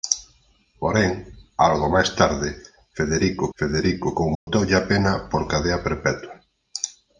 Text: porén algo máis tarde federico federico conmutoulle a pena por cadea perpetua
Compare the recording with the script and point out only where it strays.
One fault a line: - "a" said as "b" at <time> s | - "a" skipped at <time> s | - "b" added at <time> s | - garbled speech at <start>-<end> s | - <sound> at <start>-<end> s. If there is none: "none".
- dropout at 4.3-4.5 s